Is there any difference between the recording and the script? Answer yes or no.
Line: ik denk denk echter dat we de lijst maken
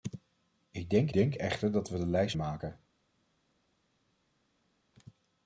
no